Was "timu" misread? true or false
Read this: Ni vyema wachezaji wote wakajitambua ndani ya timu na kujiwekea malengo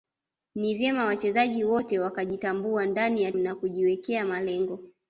true